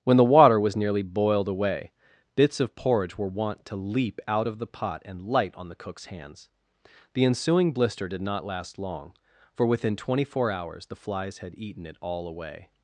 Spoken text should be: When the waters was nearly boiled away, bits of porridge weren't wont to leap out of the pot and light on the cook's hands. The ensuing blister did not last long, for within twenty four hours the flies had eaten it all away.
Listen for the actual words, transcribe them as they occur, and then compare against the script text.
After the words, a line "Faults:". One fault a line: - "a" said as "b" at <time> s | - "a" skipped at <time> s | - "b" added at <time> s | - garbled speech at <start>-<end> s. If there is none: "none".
When the water was nearly boiled away, bits of porridge were wont to leap out of the pot and light on the cook's hands. The ensuing blister did not last long, for within twenty four hours the flies had eaten it all away.
Faults:
- "waters" said as "water" at 0.2 s
- "weren't" said as "were" at 3.2 s